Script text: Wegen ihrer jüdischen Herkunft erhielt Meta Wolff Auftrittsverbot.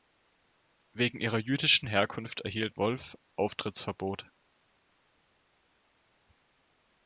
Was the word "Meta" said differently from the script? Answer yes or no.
yes